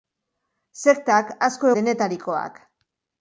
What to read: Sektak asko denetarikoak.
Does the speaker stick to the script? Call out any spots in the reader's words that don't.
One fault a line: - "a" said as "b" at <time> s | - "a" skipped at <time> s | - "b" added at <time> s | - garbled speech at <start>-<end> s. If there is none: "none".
none